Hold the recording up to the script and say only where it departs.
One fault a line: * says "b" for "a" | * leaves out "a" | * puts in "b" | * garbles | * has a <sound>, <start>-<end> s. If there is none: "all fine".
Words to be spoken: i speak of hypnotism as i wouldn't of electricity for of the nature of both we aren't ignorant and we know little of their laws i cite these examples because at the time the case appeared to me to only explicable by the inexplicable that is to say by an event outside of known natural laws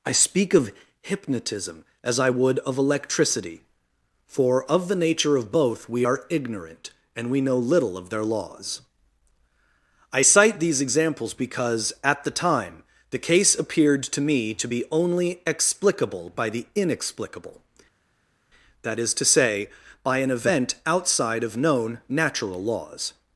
* says "would" for "wouldn't"
* says "are" for "aren't"
* puts in "be"